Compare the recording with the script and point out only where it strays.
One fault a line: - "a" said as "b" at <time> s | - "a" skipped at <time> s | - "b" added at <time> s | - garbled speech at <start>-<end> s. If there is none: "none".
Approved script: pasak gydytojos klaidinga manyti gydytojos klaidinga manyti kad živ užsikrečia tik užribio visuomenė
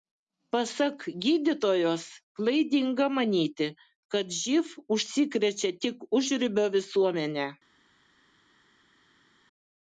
- "gydytojos klaidinga manyti" skipped at 3.7 s